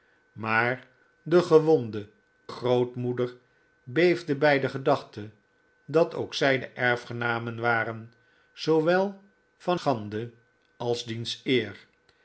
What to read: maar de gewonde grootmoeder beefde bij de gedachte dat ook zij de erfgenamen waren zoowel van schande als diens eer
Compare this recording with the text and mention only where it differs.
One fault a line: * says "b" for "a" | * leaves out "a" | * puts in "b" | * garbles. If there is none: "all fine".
all fine